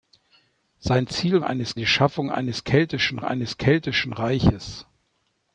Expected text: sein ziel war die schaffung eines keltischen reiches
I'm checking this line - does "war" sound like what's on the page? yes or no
no